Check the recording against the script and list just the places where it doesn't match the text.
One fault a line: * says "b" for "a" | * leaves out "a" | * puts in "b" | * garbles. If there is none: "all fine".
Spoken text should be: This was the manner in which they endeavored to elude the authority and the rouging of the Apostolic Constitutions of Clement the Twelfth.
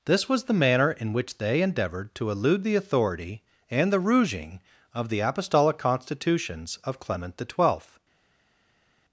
all fine